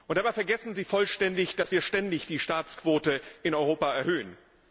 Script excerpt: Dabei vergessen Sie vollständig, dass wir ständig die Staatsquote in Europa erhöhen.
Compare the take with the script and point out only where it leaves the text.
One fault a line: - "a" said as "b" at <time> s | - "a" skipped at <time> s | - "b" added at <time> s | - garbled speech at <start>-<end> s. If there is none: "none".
none